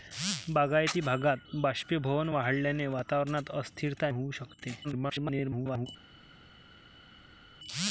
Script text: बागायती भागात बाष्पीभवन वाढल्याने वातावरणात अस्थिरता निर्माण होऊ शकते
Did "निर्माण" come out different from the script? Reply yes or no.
yes